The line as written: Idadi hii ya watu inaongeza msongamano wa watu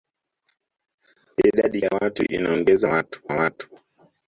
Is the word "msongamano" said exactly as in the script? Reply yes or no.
no